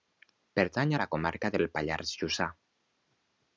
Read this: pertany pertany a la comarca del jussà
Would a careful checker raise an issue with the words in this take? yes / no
yes